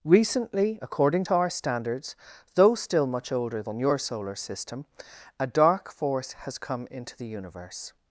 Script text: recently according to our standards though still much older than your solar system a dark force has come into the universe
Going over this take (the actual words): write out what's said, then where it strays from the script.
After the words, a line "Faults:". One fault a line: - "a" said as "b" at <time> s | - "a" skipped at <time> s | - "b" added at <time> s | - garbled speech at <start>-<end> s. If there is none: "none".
recently according to our standards though still much older than your solar system a dark force has come into the universe
Faults:
none